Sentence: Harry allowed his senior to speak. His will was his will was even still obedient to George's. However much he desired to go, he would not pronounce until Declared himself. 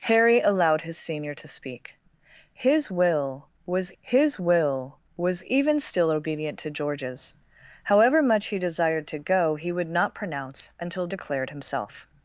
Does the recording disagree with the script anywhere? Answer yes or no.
no